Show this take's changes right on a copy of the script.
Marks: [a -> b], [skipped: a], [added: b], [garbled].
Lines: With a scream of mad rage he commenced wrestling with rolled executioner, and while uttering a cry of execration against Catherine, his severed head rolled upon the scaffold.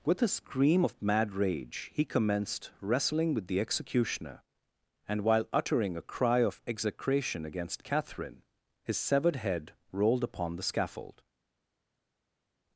With a scream of mad rage he commenced wrestling with [rolled -> the] executioner, and while uttering a cry of execration against Catherine, his severed head rolled upon the scaffold.